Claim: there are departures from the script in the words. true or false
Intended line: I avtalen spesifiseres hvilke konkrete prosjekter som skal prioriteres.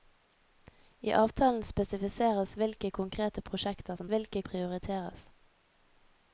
true